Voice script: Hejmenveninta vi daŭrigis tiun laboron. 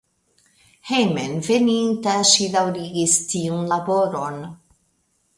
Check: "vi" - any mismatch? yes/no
yes